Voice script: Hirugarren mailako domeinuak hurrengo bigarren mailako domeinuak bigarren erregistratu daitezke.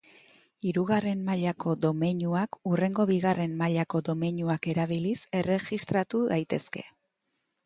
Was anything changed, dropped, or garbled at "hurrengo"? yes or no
no